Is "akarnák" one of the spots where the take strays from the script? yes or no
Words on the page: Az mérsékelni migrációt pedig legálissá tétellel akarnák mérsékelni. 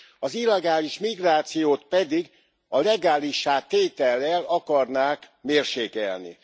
no